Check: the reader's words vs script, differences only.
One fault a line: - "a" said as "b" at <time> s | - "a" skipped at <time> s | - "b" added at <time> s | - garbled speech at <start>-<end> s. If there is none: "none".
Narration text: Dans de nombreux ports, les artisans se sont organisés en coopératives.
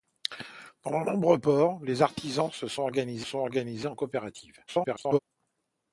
- "sont organisés" added at 3.2 s
- garbled speech at 4.7-5.2 s